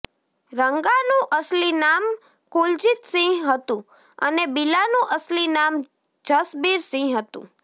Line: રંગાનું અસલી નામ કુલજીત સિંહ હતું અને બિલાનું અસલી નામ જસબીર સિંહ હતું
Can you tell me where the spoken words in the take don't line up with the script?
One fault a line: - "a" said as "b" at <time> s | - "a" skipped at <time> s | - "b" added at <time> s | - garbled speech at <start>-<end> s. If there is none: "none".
none